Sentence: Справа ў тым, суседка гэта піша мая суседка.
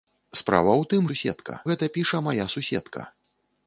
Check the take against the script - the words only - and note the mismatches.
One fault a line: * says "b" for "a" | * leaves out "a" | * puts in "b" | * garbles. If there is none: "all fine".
all fine